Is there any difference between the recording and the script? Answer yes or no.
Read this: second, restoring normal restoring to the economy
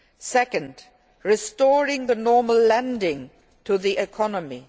yes